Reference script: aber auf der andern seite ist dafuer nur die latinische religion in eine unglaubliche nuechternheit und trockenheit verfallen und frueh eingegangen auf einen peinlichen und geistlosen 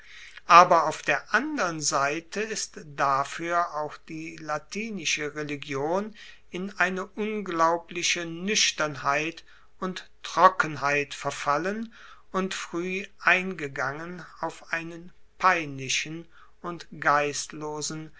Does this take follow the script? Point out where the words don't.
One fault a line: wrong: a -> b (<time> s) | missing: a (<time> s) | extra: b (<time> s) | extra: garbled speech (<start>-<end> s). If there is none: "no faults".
wrong: nur -> auch (3.8 s)